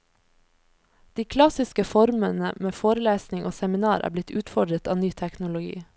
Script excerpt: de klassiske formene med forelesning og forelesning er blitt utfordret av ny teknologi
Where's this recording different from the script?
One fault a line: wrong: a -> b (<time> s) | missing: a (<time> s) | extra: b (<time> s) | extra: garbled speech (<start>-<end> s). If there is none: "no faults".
wrong: forelesning -> seminar (3.5 s)